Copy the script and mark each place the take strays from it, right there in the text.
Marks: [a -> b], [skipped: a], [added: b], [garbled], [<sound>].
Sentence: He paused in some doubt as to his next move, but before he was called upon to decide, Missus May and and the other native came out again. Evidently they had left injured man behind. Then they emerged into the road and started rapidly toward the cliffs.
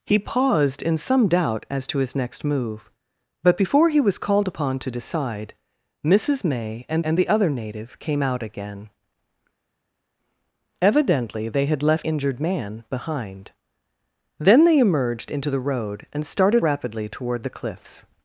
He paused in some doubt as to his next move, but before he was called upon to decide, Missus May and and the other native came out again. Evidently they had left injured man behind. Then they emerged into the road and started rapidly toward the cliffs.